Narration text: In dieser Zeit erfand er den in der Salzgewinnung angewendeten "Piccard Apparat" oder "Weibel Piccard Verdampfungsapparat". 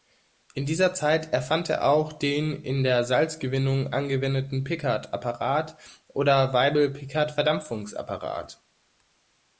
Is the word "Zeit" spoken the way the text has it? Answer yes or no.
yes